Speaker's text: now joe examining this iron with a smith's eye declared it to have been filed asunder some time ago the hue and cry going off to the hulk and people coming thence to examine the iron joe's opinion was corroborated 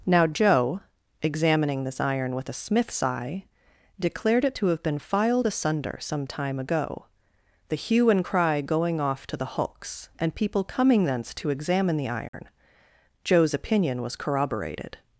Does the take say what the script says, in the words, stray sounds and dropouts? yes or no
no